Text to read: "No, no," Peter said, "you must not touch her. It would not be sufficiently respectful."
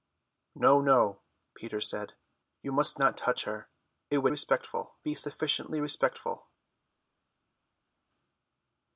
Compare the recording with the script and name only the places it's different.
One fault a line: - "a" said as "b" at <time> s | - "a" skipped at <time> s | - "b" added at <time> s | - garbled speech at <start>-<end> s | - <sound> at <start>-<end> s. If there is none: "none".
- "not" said as "respectful" at 4.3 s